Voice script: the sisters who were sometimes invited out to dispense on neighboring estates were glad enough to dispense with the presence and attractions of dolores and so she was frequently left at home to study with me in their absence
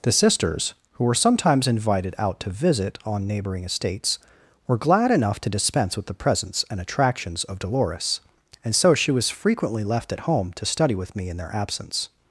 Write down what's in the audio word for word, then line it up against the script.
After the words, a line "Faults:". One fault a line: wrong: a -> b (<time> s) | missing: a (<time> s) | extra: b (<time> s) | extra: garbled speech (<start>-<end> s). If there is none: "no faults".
the sisters who were sometimes invited out to visit on neighboring estates were glad enough to dispense with the presence and attractions of dolores and so she was frequently left at home to study with me in their absence
Faults:
wrong: dispense -> visit (2.5 s)